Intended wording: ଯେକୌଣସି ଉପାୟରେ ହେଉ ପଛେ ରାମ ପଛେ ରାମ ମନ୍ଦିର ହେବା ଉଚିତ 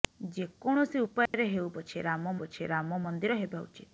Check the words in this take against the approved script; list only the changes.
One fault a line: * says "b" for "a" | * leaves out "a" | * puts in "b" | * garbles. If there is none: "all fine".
all fine